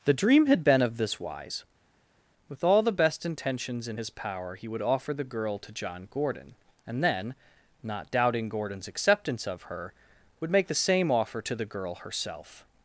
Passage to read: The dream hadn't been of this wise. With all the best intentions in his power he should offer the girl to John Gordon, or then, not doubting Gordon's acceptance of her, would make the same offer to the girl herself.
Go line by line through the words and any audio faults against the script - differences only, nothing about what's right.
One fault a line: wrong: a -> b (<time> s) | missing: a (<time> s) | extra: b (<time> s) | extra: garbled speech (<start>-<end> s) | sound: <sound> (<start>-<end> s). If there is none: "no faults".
wrong: hadn't -> had (0.5 s)
wrong: should -> would (4.7 s)
wrong: or -> and (6.9 s)